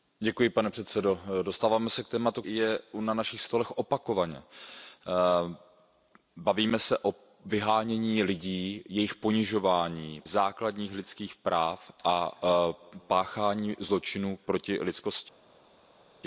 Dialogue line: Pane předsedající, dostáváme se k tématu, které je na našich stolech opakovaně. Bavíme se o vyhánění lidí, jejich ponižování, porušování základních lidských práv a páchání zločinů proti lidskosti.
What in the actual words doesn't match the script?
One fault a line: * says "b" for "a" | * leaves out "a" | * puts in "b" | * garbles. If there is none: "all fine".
* leaves out "které"
* leaves out "porušování"